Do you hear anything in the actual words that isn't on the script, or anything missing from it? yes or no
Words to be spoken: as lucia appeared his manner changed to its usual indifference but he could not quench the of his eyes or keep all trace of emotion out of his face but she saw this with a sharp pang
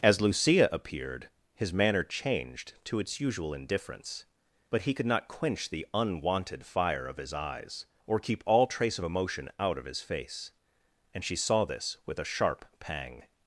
yes